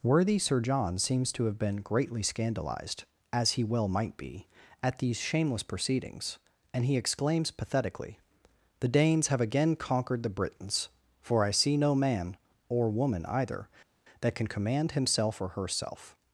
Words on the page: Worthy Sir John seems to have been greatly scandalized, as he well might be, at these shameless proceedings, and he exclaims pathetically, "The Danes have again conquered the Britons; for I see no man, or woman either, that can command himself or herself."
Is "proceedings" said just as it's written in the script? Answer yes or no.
yes